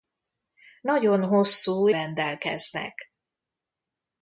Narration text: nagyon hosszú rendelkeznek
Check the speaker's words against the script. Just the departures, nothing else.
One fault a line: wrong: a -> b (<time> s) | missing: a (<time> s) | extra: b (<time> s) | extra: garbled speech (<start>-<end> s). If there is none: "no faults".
no faults